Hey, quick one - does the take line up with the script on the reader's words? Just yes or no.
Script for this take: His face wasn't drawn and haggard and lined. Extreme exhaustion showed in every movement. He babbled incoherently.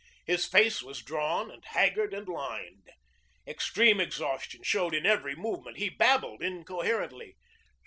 no